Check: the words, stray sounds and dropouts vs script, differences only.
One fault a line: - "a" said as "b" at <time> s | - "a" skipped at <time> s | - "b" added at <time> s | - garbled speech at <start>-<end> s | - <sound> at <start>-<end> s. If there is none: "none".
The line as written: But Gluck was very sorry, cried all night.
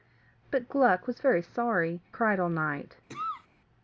- cough at 3.1-3.5 s